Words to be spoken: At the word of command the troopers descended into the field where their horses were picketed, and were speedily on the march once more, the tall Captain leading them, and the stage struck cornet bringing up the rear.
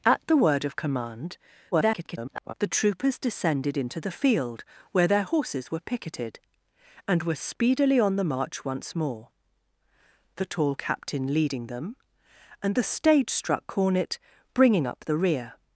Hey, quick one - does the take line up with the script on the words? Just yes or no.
no